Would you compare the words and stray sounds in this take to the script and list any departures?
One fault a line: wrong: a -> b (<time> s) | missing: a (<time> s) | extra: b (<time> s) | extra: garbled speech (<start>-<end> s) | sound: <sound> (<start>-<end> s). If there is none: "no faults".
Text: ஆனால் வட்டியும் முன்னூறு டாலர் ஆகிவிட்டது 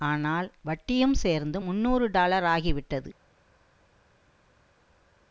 extra: சேர்ந்து (1.2 s)